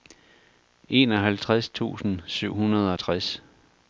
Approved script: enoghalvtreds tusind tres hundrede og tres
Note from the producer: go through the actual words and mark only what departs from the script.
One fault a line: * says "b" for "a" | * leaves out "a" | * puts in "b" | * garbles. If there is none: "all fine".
* says "syv" for "tres"